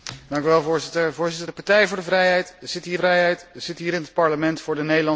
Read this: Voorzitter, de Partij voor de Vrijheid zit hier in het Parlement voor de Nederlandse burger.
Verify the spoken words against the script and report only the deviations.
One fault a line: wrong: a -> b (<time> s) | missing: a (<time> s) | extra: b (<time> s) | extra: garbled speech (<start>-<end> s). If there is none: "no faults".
extra: Vrijheid zit hier (2.9 s)